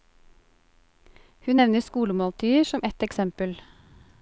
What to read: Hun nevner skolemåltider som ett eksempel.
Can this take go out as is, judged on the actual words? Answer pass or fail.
pass